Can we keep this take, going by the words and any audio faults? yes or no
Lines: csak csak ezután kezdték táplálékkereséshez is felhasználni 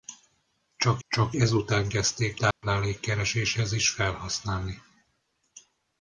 no